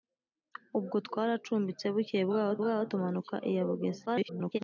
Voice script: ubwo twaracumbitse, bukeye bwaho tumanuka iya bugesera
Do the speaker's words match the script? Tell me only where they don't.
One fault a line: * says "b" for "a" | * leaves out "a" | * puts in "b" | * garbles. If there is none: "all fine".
* puts in "bwaho"
* garbles